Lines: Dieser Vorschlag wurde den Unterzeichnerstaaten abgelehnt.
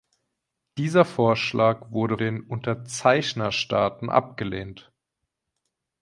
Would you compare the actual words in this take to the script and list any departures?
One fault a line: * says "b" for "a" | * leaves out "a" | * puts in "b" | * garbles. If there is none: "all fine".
all fine